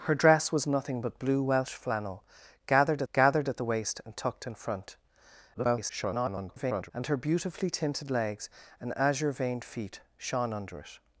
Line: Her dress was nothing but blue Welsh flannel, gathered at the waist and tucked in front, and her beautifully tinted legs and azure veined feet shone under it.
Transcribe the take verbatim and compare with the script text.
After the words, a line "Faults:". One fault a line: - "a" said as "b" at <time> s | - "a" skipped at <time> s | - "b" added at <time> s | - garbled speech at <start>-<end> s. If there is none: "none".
Her dress was nothing but blue Welsh flannel, gathered gathered at the waist and tucked in front, [garbled] and her beautifully tinted legs and azure veined feet shone under it.
Faults:
- "gathered" added at 3.1 s
- garbled speech at 5.5-6.9 s